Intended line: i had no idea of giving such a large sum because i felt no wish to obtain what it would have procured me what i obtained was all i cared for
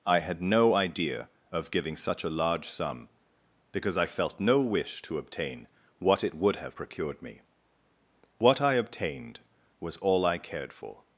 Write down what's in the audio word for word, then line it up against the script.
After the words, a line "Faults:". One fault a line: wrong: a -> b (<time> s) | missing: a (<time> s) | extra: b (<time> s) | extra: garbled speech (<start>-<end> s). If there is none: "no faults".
i had no idea of giving such a large sum because i felt no wish to obtain what it would have procured me what i obtained was all i cared for
Faults:
no faults